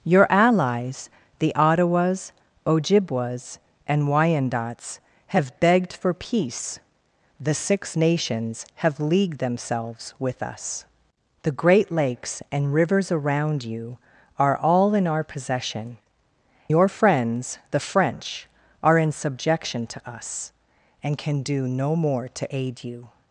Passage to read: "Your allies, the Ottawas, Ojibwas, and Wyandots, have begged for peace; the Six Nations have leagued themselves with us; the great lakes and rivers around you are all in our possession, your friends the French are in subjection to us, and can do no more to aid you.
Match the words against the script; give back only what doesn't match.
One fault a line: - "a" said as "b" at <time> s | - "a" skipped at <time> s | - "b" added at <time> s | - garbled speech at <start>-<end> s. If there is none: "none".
none